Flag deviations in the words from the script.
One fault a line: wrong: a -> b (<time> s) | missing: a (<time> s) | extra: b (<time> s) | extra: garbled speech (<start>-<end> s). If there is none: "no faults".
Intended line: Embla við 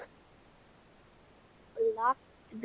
no faults